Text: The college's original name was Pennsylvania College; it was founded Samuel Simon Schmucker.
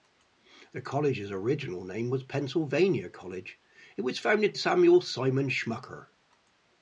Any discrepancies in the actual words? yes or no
no